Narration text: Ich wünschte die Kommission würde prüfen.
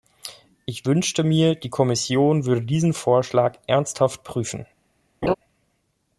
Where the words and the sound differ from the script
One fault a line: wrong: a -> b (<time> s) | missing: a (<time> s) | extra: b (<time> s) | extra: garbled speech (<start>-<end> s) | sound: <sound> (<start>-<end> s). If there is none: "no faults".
extra: mir (1.3 s)
extra: diesen Vorschlag ernsthaft (2.6 s)
sound: laugh (5.2-5.3 s)